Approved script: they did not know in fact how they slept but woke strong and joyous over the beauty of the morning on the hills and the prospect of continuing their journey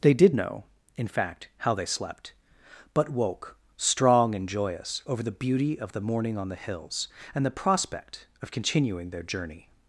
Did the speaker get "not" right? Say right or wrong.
wrong